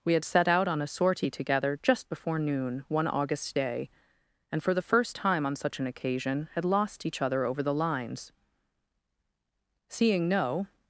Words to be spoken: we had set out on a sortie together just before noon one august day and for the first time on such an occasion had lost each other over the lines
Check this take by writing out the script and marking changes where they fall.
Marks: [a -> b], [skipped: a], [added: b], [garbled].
we had set out on a sortie together just before noon one august day and for the first time on such an occasion had lost each other over the lines [added: seeing no]